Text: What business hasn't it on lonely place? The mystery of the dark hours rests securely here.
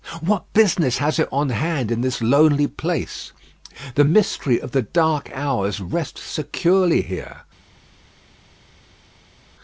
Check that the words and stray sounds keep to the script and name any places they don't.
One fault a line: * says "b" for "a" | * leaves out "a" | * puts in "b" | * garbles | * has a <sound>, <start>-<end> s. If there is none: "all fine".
* says "has" for "hasn't"
* puts in "hand in this"